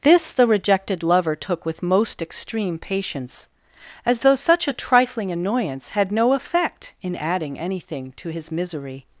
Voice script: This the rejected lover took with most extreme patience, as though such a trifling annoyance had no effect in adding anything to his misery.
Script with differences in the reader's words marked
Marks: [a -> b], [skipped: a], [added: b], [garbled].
This the rejected lover took with most extreme patience, as though such a trifling annoyance had no effect in adding anything to his misery.